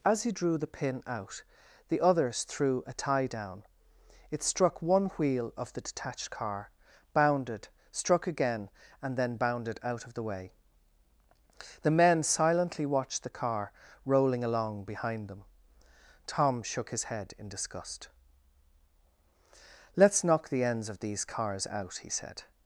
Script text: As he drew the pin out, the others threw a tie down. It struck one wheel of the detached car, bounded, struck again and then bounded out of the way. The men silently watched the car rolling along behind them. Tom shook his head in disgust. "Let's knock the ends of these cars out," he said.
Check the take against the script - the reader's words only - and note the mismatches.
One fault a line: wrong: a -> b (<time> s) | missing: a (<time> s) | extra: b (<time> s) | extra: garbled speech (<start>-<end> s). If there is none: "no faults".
no faults